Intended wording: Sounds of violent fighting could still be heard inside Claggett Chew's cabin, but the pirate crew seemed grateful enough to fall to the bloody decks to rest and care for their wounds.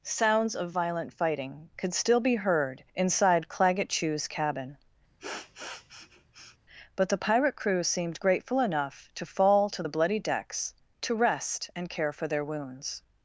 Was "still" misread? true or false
false